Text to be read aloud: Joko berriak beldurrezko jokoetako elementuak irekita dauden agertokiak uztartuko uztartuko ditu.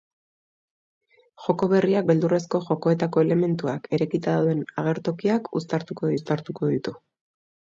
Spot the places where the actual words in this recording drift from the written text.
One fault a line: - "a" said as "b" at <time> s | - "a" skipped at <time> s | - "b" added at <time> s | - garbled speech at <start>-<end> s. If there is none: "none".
none